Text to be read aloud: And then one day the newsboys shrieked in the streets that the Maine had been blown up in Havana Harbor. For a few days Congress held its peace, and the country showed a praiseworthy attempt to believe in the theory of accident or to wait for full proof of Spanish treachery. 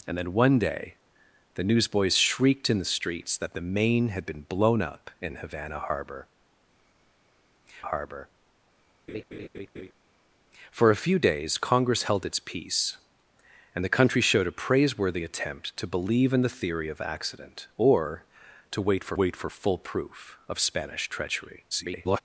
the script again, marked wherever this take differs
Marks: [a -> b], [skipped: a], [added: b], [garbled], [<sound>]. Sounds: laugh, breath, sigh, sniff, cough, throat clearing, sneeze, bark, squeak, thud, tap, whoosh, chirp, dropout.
And then one day the newsboys shrieked in the streets that the Maine had been blown up in Havana Harbor. [added: Harbor] [laugh] For a few days Congress held its peace, and the country showed a praiseworthy attempt to believe in the theory of accident or to wait for [added: wait for] full proof of Spanish treachery. [garbled]